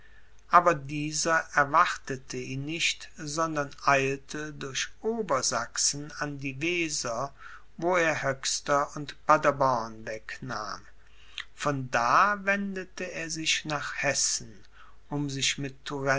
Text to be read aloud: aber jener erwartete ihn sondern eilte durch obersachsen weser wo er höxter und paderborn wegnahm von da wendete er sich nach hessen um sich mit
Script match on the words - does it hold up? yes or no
no